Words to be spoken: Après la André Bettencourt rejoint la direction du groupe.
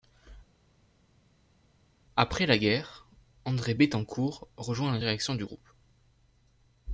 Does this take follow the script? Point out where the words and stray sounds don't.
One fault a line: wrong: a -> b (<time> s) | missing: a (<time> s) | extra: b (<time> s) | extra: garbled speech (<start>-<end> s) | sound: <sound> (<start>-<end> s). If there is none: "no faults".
extra: guerre (2.6 s)